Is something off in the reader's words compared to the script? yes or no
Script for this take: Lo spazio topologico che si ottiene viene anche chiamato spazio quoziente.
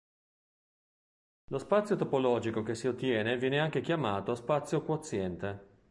no